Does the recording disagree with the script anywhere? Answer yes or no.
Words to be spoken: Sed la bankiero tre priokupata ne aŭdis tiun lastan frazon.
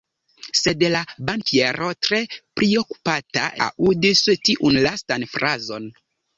yes